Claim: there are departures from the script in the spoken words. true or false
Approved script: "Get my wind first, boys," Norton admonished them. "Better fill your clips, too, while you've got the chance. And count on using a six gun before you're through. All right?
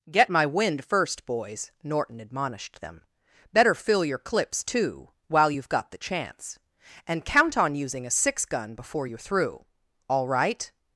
false